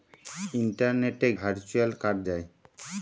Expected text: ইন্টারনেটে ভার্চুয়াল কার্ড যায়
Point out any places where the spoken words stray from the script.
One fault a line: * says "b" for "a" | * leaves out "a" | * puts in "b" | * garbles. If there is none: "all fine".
all fine